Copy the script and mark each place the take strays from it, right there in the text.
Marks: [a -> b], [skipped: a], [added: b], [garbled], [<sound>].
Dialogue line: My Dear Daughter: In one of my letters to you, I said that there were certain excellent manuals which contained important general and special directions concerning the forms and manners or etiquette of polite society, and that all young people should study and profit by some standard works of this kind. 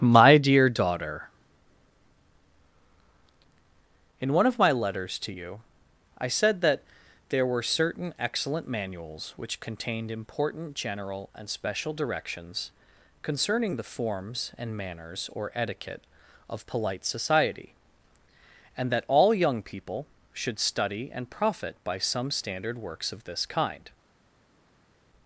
My Dear Daughter: In one of my letters to you, I said that there were certain excellent manuals which contained important general and special directions concerning the forms and manners or etiquette of polite society, and that all young people should study and profit by some standard works of this kind.